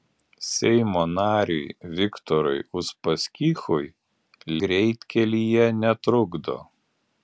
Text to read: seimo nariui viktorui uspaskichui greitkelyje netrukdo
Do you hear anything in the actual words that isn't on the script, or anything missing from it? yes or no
no